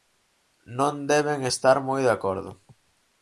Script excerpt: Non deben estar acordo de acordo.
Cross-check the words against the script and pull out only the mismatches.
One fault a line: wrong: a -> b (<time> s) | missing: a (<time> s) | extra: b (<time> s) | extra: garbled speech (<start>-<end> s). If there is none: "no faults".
wrong: acordo -> moi (1.9 s)